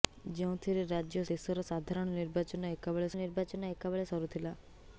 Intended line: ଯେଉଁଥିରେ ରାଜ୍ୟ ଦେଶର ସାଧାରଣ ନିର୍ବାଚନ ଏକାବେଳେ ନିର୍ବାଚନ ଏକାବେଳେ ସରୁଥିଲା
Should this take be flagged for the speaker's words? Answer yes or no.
no